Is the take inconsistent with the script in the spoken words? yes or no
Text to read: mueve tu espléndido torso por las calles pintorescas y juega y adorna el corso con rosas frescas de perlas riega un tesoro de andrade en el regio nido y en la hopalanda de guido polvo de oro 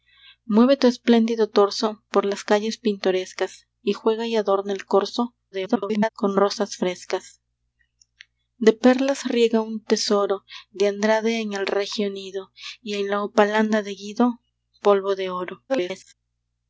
yes